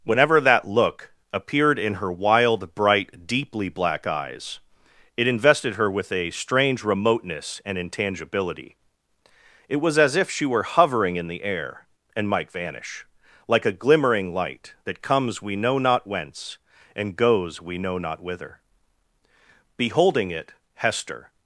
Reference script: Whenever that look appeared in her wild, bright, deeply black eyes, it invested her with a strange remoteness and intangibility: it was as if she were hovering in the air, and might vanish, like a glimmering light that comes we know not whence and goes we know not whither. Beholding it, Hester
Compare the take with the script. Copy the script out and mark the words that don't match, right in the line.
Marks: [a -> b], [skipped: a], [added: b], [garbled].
Whenever that look appeared in her wild, bright, deeply black eyes, it invested her with a strange remoteness and intangibility: it was as if she were hovering in the air, and might vanish, like a glimmering light that comes we know not whence and goes we know not whither. Beholding it, Hester